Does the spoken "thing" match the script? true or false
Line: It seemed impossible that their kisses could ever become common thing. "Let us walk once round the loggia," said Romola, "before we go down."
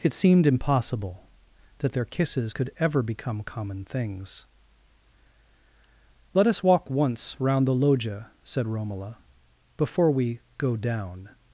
false